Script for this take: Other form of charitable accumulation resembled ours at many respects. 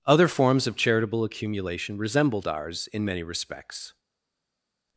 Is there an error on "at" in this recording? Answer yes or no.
yes